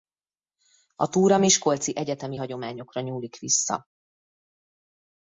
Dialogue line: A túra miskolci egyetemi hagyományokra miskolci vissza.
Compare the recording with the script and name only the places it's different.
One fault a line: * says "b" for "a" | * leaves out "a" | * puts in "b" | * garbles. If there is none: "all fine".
* says "nyúlik" for "miskolci"